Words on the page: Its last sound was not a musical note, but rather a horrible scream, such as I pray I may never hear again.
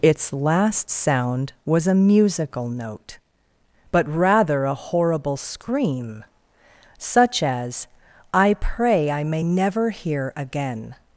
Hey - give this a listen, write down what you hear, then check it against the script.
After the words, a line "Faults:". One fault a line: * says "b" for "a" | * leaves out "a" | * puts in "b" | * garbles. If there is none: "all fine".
Its last sound was a musical note, but rather a horrible scream, such as I pray I may never hear again.
Faults:
* leaves out "not"